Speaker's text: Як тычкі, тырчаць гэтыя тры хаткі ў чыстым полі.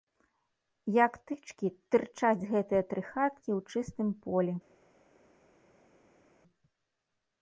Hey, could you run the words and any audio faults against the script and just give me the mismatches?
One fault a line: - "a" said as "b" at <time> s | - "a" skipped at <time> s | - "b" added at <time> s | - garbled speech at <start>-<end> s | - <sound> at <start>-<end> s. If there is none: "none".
none